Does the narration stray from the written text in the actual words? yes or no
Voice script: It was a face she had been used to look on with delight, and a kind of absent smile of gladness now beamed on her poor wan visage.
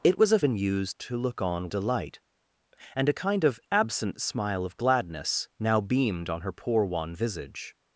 yes